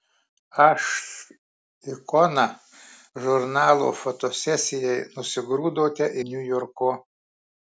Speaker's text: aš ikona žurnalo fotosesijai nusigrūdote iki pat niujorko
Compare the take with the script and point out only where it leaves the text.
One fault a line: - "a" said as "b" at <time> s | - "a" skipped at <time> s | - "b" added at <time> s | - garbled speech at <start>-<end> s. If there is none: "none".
- "iki pat" skipped at 6.1 s